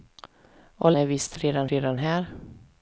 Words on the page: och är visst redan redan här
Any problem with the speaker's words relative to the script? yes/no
no